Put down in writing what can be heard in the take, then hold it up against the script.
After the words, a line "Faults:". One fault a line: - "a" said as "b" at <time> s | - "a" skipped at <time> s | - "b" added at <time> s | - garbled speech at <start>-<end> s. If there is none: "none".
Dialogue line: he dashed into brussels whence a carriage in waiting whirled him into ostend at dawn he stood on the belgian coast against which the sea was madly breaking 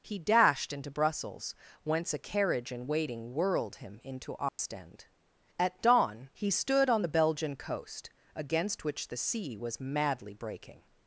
he dashed into brussels whence a carriage in waiting whirled him into ostend at dawn he stood on the belgian coast against which the sea was madly breaking
Faults:
none